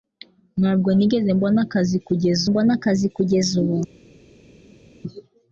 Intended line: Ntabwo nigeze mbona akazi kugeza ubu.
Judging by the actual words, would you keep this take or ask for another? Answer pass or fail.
fail